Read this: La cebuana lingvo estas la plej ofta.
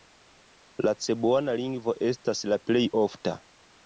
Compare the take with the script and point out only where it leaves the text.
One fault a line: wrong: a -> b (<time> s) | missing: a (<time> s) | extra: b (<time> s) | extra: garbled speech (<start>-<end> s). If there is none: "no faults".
no faults